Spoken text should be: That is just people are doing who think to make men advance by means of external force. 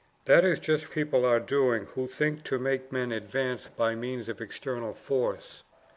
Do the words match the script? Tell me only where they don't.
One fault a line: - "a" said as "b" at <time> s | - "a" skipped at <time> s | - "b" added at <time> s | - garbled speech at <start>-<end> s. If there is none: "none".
none